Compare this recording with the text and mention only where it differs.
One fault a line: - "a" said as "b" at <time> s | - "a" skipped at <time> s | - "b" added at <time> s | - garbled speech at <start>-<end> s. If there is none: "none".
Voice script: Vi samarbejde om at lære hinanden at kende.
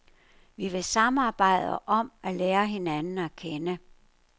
- "vil" added at 0.7 s